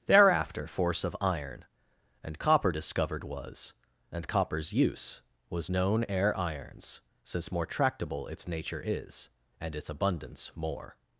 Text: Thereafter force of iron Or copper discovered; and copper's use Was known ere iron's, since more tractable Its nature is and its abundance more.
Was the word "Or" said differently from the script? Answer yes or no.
yes